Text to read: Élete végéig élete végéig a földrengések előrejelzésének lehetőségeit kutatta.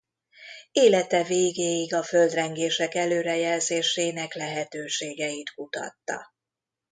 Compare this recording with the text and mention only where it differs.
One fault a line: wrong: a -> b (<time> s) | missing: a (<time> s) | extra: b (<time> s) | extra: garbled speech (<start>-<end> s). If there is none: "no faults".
missing: élete végéig (1.9 s)